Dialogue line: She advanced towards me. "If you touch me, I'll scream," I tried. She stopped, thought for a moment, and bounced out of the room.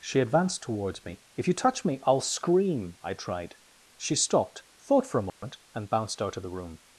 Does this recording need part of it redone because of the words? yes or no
no